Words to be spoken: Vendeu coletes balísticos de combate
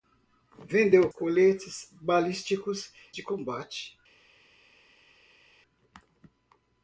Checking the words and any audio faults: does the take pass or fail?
pass